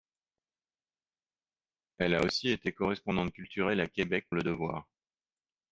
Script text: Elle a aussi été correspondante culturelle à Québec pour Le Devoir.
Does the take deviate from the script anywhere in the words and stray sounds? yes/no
yes